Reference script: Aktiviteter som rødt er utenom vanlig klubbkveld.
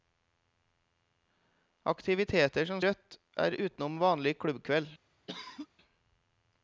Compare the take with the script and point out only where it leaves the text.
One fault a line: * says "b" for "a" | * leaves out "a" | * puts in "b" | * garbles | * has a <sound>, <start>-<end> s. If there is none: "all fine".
* has a cough, 5.3-5.7 s